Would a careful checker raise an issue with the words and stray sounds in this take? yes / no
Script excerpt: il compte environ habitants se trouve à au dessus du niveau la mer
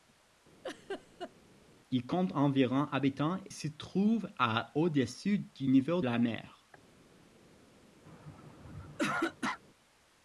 yes